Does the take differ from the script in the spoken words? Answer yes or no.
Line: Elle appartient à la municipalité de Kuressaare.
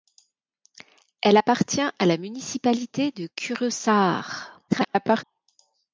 yes